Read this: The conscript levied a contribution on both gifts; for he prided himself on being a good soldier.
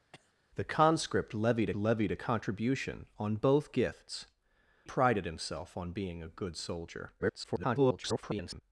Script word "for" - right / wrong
wrong